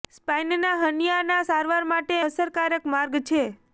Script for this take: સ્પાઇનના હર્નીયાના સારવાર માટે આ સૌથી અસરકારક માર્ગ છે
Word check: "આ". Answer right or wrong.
wrong